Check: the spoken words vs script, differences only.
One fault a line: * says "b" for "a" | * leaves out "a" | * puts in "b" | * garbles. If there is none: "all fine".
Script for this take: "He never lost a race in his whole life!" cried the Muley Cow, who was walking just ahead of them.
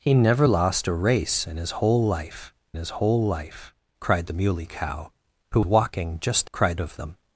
* puts in "his whole life"
* leaves out "was"
* says "cried" for "ahead"